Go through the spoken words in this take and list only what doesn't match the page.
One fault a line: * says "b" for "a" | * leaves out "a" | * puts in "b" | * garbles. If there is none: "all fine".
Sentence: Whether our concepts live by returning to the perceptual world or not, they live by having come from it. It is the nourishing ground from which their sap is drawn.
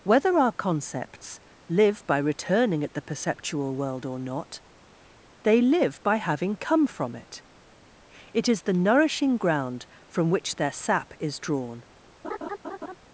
* says "at" for "to"